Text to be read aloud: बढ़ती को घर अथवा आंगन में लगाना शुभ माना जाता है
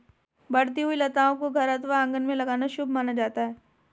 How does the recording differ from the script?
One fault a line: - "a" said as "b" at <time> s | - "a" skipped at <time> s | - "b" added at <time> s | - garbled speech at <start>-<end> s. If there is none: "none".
- "हुई लताओं" added at 0.8 s